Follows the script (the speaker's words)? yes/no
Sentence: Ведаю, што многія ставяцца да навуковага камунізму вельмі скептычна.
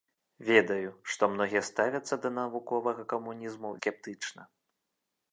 no